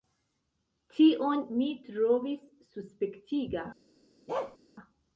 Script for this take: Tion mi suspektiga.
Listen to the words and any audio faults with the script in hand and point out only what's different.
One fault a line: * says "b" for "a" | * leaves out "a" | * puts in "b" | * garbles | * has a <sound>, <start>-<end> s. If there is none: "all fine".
* puts in "trovis"
* has a bark, 4.3-4.6 s